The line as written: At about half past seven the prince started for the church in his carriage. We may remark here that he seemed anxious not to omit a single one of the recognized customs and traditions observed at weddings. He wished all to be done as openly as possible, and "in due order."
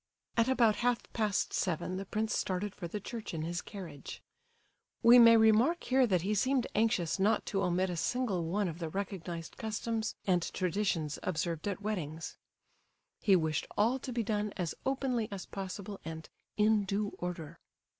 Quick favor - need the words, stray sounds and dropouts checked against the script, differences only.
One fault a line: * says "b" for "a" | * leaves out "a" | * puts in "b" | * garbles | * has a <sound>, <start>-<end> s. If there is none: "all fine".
all fine